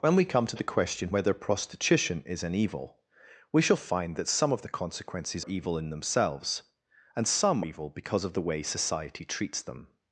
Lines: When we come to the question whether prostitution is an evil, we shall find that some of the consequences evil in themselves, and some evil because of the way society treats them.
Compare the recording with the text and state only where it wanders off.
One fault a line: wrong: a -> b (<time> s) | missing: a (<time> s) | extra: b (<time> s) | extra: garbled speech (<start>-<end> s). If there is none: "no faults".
no faults